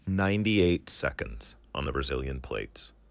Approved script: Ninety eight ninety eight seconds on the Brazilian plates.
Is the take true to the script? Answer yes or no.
no